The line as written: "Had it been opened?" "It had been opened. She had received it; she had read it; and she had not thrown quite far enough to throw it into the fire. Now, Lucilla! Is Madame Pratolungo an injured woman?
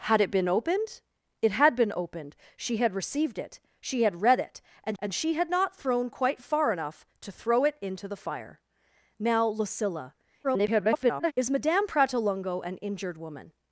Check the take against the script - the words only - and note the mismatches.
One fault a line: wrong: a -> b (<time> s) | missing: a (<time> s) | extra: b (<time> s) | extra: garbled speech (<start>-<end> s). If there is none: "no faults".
extra: and (5.0 s)
extra: garbled speech (10.4-11.3 s)